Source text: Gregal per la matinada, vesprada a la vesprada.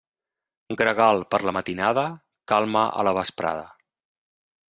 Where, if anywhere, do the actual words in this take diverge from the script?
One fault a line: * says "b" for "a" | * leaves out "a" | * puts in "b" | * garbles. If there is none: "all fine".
* says "calma" for "vesprada"